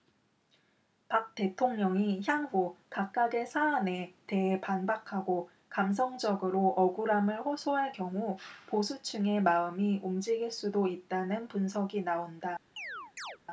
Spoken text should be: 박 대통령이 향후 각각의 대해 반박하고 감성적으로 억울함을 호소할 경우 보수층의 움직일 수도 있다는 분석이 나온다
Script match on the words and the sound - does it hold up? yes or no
no